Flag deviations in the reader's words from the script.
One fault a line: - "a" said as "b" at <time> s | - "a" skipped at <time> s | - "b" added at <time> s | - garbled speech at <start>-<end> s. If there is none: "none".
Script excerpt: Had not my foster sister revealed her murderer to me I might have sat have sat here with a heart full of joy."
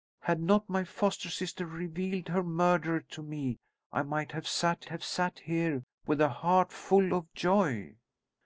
none